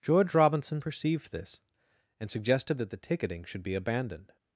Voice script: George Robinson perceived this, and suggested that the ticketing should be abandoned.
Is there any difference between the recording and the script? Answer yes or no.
no